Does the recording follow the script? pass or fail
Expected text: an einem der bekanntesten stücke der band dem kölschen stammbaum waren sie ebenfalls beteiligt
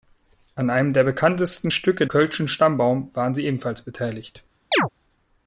fail